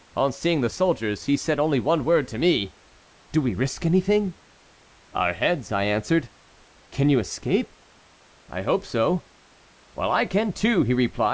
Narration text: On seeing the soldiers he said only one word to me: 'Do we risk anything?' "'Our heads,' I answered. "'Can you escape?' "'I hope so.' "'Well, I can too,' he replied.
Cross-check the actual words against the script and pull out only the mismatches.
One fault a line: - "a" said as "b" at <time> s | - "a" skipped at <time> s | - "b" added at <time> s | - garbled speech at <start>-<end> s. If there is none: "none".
none